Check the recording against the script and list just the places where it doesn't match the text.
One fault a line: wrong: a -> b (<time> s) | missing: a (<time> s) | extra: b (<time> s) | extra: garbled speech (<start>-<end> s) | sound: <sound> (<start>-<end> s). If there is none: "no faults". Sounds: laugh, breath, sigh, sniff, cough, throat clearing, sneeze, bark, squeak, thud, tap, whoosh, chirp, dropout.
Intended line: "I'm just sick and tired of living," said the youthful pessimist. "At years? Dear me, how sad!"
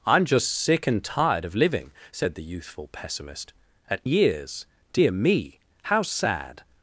no faults